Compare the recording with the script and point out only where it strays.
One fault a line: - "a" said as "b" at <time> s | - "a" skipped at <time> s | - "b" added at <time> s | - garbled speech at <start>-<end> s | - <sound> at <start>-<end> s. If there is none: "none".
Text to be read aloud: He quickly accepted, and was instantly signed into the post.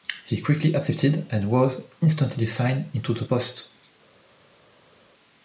none